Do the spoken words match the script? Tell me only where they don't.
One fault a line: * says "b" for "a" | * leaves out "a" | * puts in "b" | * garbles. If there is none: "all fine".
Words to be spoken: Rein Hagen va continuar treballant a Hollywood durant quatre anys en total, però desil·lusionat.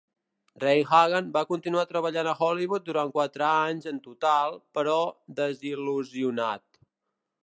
all fine